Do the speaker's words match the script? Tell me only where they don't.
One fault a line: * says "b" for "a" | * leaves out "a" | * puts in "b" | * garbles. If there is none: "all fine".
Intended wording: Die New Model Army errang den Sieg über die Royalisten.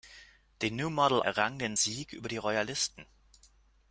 * leaves out "Army"